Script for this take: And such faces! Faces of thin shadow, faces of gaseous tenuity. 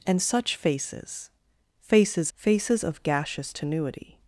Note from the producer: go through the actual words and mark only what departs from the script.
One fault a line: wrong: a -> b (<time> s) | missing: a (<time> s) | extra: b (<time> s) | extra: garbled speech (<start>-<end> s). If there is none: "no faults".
missing: of thin shadow (2.3 s)